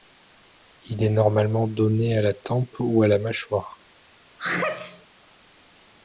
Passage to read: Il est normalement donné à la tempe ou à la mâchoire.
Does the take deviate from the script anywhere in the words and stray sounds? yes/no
yes